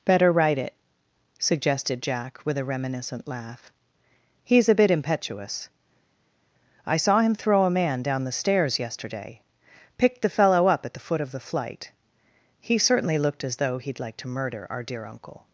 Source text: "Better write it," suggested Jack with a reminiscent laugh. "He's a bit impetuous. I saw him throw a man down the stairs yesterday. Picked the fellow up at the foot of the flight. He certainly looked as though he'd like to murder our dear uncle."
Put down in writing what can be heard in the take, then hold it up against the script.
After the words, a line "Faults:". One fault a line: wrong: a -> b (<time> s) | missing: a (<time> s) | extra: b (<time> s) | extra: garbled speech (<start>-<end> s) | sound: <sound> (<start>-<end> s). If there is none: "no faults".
"Better write it," suggested Jack with a reminiscent laugh. "He's a bit impetuous. I saw him throw a man down the stairs yesterday. Picked the fellow up at the foot of the flight. He certainly looked as though he'd like to murder our dear uncle."
Faults:
no faults